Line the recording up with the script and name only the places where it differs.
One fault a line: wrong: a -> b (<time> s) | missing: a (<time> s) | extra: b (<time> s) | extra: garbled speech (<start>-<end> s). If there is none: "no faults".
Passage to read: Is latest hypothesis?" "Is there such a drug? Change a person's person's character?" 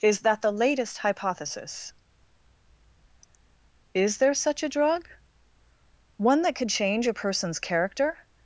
extra: that the (0.2 s)
extra: One that could (6.2 s)
missing: person's (7.6 s)